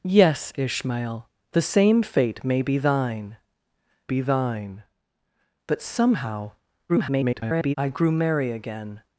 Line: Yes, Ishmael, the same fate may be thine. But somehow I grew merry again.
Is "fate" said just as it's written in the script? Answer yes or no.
yes